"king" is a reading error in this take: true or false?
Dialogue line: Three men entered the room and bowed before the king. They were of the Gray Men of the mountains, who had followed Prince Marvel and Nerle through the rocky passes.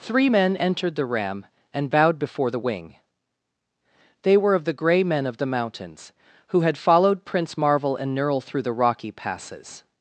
true